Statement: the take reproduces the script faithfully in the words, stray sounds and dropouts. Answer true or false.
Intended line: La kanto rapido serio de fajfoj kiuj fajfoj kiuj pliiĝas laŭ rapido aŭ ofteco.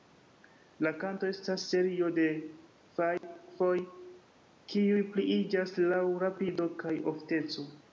false